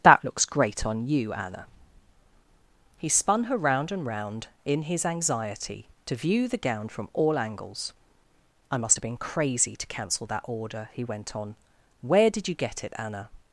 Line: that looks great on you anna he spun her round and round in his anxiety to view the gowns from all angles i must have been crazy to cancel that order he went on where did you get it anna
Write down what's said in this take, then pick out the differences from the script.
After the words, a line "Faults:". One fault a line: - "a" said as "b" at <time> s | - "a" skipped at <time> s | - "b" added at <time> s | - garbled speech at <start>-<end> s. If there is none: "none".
that looks great on you anna he spun her round and round in his anxiety to view the gown from all angles i must have been crazy to cancel that order he went on where did you get it anna
Faults:
- "gowns" said as "gown" at 6.6 s